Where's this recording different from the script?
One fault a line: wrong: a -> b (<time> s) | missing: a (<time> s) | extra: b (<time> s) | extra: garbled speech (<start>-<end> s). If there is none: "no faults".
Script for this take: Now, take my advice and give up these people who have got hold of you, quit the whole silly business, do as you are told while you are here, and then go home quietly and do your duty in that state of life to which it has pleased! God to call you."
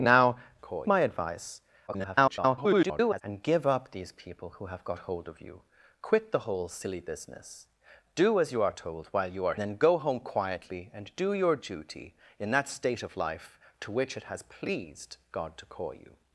wrong: take -> call (0.6 s)
extra: garbled speech (1.9-3.2 s)
missing: here and (9.5 s)